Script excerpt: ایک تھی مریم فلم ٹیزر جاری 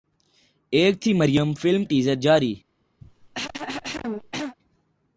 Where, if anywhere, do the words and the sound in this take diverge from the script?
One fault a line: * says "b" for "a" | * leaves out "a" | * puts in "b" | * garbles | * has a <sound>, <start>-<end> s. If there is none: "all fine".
* has a cough, 3.0-4.6 s